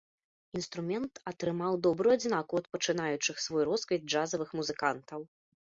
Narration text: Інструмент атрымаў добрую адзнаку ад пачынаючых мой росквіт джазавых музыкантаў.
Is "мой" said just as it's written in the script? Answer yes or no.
no